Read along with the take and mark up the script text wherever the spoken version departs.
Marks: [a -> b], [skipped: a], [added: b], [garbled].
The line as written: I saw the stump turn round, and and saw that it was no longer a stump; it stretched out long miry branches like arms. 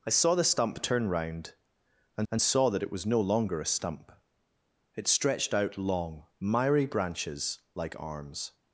I saw the stump turn round, and and saw that it was no longer a stump; it stretched out long miry branches like arms.